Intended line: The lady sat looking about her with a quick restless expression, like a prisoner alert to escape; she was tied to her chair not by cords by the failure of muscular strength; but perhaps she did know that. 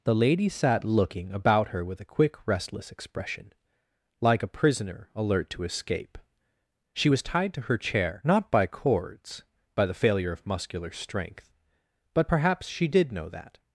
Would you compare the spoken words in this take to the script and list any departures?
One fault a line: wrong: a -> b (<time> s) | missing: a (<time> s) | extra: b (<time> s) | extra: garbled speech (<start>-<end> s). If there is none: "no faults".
no faults